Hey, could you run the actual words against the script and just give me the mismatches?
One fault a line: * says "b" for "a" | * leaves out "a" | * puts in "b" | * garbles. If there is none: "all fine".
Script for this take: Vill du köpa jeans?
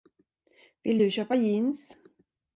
all fine